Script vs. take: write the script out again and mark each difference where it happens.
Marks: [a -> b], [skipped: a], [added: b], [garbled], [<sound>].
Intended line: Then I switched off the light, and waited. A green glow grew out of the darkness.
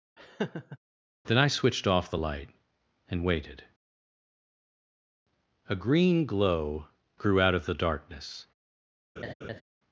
[laugh] Then I switched off the light, and waited. A green glow grew out of the darkness. [laugh]